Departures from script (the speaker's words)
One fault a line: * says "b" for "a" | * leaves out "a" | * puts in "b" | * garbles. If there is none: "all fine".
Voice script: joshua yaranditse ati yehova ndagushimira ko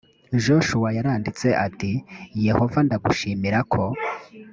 all fine